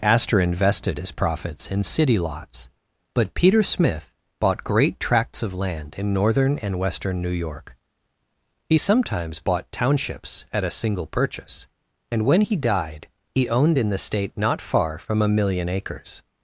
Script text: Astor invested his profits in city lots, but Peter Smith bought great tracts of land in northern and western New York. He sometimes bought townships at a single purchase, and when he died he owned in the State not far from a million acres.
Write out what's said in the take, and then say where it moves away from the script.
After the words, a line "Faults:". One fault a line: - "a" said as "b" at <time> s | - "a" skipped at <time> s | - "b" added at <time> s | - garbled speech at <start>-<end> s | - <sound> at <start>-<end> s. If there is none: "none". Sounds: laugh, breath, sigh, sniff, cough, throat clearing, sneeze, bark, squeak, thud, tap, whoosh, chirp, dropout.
Astor invested his profits in city lots, but Peter Smith bought great tracts of land in northern and western New York. He sometimes bought townships at a single purchase, and when he died he owned in the State not far from a million acres.
Faults:
none